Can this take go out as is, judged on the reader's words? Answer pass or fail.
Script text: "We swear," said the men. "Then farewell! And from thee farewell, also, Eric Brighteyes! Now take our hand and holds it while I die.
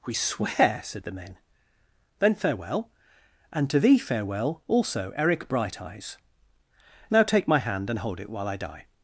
fail